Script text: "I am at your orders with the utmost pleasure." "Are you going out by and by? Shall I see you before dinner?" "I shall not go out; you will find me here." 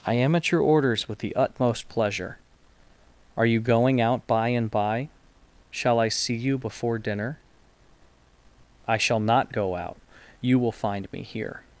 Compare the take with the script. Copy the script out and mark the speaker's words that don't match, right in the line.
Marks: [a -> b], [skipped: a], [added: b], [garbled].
"I am at your orders with the utmost pleasure." "Are you going out by and by? Shall I see you before dinner?" "I shall not go out; you will find me here."